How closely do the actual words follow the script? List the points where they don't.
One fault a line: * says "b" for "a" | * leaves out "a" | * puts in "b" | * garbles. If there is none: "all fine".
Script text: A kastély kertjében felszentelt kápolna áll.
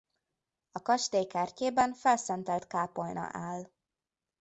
all fine